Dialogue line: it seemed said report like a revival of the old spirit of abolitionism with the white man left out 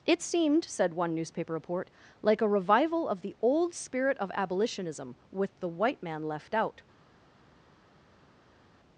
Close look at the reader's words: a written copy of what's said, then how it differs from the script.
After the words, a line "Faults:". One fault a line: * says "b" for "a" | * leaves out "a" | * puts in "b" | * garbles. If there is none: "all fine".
it seemed said one newspaper report like a revival of the old spirit of abolitionism with the white man left out
Faults:
* puts in "one newspaper"